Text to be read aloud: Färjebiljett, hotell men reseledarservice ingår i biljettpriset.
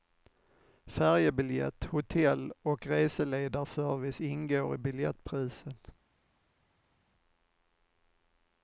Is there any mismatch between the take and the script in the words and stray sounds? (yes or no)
yes